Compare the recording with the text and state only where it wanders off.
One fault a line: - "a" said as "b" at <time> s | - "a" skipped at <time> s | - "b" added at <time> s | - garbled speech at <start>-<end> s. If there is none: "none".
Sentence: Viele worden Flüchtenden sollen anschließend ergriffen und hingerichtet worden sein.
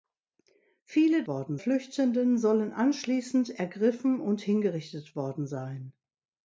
none